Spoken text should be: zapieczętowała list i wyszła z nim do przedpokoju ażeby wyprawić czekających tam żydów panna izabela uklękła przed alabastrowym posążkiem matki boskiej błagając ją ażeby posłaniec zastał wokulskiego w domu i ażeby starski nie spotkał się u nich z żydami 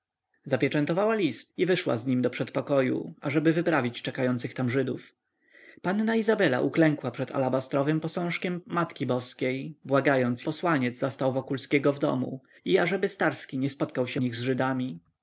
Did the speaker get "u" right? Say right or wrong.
wrong